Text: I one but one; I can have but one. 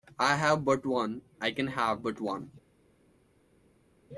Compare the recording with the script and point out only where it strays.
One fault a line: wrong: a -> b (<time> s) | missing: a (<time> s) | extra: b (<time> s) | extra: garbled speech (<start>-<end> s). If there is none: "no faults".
wrong: one -> have (0.3 s)